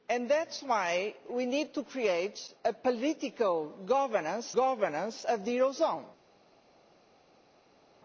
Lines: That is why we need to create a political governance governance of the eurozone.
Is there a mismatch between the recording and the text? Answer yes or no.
no